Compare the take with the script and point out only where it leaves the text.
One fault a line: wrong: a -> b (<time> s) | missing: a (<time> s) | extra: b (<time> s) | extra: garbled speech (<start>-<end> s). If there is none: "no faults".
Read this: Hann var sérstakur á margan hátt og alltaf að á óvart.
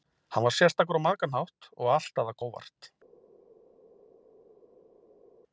no faults